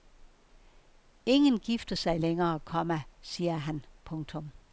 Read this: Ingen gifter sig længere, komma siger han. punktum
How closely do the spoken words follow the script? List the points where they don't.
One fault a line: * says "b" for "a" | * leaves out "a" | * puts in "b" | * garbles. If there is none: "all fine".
all fine